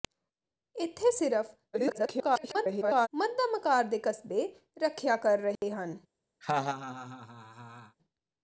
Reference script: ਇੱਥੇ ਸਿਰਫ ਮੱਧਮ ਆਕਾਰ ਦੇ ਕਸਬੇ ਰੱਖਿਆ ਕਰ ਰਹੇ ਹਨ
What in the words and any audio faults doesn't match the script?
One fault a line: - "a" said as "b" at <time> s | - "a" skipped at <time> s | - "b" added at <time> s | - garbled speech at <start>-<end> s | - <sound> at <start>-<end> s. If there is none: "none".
- garbled speech at 1.7-3.1 s
- dropout at 5.6-5.6 s
- laugh at 6.4-8.0 s